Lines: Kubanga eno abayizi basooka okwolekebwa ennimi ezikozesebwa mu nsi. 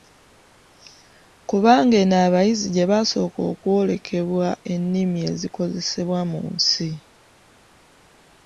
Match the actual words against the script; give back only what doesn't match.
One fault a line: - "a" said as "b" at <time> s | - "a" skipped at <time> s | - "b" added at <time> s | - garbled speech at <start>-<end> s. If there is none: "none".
- "gye" added at 2.8 s